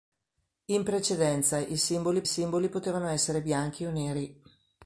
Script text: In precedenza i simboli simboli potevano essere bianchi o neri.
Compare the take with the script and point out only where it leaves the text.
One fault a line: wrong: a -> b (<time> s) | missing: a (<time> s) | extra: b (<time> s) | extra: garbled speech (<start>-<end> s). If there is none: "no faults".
no faults